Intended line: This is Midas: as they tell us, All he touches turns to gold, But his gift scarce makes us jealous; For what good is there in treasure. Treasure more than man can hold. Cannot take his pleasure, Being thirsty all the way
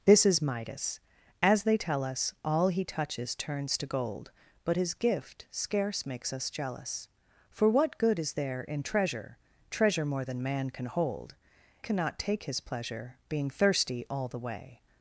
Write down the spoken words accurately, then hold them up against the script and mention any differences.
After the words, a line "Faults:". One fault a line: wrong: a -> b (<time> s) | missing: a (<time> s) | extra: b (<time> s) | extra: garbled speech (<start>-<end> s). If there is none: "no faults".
This is Midas: as they tell us, All he touches turns to gold, But his gift scarce makes us jealous; For what good is there in treasure. Treasure more than man can hold. Cannot take his pleasure, Being thirsty all the way
Faults:
no faults